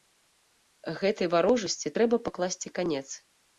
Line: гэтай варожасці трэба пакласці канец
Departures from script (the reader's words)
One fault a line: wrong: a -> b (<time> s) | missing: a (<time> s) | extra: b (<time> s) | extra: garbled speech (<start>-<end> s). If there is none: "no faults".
no faults